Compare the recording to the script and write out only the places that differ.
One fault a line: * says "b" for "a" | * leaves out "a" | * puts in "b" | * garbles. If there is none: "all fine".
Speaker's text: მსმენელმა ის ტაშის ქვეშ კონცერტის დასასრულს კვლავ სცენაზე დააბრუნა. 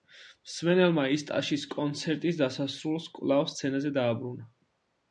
* leaves out "ქვეშ"